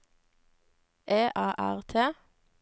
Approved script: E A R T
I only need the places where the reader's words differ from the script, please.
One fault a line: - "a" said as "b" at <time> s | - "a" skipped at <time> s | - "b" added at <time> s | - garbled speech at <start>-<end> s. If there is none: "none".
none